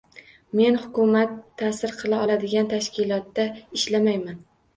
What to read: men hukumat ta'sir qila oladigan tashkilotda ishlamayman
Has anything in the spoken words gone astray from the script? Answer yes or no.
no